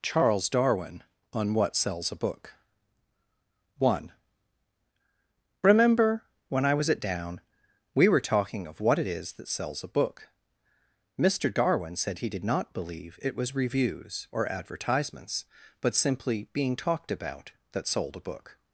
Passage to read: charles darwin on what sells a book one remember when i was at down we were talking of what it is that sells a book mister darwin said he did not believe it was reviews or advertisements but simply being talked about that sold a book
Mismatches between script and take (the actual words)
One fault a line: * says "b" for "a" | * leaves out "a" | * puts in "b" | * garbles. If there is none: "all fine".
all fine